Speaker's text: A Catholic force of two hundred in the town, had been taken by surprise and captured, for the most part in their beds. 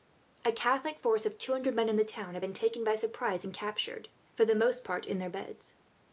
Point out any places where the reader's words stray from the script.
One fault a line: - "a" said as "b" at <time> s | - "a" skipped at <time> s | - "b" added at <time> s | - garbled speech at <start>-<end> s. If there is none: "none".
- "men" added at 1.8 s